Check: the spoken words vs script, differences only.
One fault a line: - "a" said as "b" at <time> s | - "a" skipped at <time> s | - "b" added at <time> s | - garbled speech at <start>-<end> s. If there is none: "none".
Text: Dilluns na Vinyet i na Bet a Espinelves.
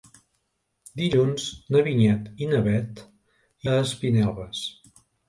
none